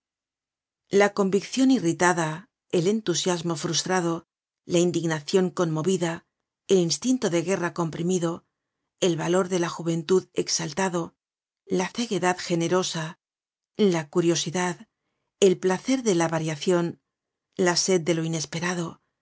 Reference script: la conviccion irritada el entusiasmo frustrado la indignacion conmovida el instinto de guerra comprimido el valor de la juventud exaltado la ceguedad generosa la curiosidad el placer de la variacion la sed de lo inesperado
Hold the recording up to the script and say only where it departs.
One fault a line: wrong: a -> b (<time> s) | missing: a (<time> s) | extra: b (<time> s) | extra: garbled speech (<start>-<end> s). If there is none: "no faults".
no faults